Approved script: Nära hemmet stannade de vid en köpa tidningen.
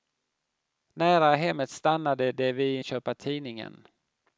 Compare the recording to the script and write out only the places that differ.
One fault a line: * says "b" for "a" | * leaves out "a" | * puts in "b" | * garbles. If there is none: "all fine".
all fine